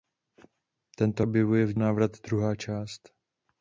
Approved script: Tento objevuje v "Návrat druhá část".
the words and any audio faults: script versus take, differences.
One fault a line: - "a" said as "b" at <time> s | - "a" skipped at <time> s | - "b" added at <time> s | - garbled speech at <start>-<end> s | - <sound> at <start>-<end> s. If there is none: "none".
none